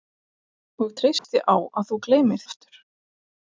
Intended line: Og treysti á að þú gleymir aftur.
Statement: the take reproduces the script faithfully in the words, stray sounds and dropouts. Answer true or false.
false